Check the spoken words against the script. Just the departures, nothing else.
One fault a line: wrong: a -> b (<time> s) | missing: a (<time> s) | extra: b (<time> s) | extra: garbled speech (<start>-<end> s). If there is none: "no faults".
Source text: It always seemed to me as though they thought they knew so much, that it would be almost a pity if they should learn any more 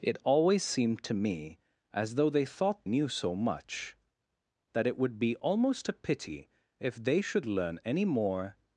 missing: they (2.9 s)